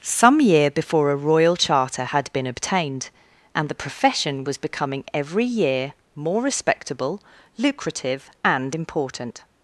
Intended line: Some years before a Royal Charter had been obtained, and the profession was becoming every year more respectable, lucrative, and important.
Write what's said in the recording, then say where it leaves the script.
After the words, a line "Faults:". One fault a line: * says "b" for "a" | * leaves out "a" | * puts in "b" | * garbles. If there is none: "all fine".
Some year before a Royal Charter had been obtained, and the profession was becoming every year more respectable, lucrative, and important.
Faults:
* says "year" for "years"